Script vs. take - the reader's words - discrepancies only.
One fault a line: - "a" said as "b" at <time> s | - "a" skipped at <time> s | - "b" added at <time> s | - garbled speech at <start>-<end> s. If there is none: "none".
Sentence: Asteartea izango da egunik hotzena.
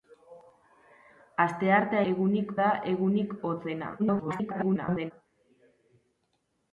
- "izango" said as "egunik" at 2.1 s
- garbled speech at 4.0-5.1 s